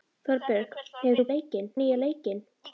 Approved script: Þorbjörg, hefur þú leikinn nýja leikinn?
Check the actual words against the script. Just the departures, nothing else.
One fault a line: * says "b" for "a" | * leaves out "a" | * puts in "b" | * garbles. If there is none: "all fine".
all fine